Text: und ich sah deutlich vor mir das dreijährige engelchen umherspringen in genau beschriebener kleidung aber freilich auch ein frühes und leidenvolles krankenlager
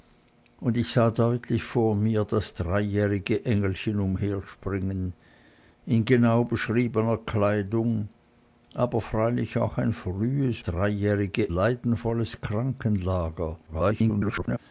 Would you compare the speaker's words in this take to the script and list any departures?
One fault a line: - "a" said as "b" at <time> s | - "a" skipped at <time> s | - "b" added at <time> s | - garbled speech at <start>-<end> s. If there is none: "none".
- "und" said as "dreijährige" at 10.6 s
- garbled speech at 13.7-14.6 s